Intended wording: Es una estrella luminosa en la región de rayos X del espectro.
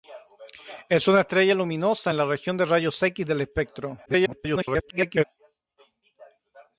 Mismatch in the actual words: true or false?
true